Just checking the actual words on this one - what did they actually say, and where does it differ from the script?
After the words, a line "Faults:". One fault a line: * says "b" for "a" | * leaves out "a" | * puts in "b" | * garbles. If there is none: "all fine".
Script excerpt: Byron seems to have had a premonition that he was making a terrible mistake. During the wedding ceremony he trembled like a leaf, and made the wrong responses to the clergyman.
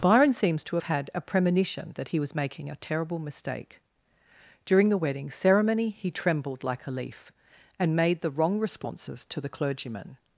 Byron seems to have had a premonition that he was making a terrible mistake. During the wedding ceremony he trembled like a leaf, and made the wrong responses to the clergyman.
Faults:
all fine